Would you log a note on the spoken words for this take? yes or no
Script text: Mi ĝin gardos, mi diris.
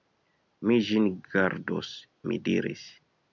no